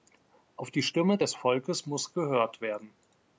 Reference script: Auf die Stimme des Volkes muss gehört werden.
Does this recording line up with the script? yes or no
yes